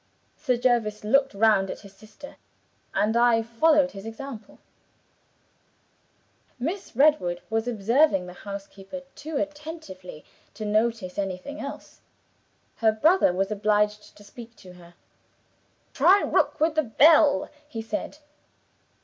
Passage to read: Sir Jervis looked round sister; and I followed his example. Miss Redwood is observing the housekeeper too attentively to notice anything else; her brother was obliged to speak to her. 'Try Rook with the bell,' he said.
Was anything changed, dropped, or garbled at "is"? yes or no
yes